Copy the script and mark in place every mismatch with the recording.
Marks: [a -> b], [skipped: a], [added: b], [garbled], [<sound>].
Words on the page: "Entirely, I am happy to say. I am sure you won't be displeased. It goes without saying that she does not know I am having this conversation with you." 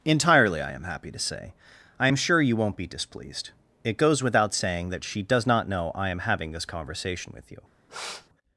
"Entirely, I am happy to say. I am sure you won't be displeased. It goes without saying that she does not know I am having this conversation with you." [sniff]